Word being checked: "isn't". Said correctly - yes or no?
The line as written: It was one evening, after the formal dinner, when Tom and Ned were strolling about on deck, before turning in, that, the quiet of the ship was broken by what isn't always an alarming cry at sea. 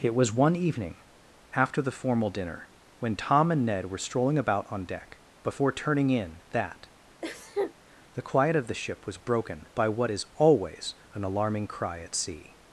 no